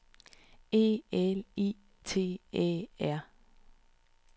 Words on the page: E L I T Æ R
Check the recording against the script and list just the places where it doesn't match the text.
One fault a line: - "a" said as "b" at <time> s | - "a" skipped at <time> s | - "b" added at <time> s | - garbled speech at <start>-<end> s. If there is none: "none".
none